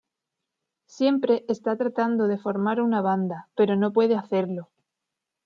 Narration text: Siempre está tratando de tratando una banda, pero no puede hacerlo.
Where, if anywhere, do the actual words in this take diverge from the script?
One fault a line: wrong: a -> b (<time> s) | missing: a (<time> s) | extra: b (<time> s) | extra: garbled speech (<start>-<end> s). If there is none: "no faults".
wrong: tratando -> formar (2.4 s)